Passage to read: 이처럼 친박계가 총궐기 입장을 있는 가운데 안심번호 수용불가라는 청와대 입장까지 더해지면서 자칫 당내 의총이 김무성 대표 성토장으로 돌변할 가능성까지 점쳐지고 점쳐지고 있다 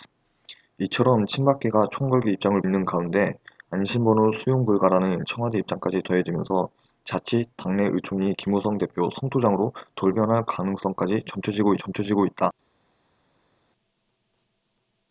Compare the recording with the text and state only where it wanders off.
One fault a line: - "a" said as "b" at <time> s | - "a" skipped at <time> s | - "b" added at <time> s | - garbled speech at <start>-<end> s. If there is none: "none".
none